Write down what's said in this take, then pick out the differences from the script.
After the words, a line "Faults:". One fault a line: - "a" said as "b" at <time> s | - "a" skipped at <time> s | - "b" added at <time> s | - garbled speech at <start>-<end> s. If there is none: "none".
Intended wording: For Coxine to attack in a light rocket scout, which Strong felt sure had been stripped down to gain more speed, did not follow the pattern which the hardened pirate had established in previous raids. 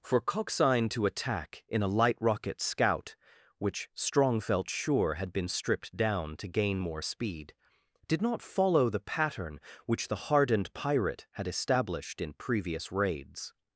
For Coxine to attack in a light rocket scout, which Strong felt sure had been stripped down to gain more speed, did not follow the pattern which the hardened pirate had established in previous raids.
Faults:
none